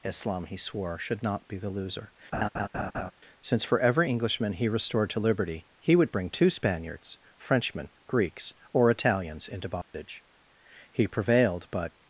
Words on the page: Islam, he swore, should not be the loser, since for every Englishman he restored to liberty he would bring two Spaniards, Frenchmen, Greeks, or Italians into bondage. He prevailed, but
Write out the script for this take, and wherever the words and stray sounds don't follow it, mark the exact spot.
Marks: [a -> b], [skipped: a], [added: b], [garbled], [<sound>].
Islam, he swore, should not be the loser, [laugh] since for every Englishman he restored to liberty he would bring two Spaniards, Frenchmen, Greeks, or Italians into bondage. [dropout] He prevailed, but